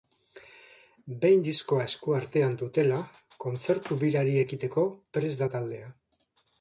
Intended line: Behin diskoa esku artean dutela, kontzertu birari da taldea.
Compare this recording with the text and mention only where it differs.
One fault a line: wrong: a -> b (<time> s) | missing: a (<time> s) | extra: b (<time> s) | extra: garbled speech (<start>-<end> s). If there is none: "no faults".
extra: ekiteko prest (4.4 s)